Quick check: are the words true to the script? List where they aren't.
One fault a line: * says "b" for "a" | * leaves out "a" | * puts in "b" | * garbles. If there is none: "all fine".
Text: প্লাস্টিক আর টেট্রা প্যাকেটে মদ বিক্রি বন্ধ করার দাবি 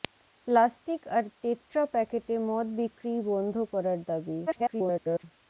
* garbles